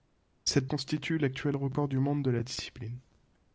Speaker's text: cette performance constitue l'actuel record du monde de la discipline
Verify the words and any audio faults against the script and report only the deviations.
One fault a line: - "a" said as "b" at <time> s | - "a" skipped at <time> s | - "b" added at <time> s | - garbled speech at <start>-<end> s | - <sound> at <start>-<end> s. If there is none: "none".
- "performance" skipped at 0.7 s